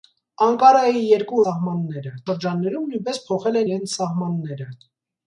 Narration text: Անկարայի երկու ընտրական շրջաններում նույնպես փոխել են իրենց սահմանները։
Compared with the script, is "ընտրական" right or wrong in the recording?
wrong